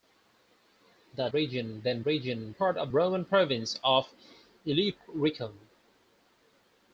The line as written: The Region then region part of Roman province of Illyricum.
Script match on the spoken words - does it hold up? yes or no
yes